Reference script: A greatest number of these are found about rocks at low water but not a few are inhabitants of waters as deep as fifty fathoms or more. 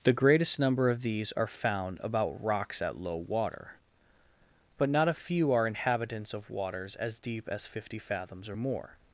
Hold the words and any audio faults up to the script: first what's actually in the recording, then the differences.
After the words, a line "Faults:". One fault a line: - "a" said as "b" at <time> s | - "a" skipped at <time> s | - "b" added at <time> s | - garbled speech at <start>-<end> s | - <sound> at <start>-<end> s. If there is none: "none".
The greatest number of these are found about rocks at low water but not a few are inhabitants of waters as deep as fifty fathoms or more.
Faults:
- "A" said as "The" at 0.0 s